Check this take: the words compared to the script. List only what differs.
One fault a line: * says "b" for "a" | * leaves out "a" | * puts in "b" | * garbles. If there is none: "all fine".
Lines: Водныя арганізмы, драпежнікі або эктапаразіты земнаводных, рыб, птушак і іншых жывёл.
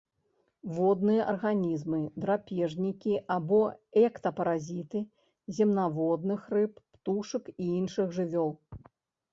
all fine